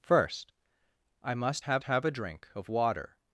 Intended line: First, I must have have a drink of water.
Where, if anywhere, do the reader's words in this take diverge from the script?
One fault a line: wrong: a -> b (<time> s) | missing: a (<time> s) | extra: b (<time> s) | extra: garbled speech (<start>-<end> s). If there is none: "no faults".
no faults